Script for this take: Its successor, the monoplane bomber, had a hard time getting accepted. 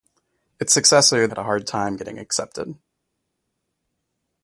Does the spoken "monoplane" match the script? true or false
false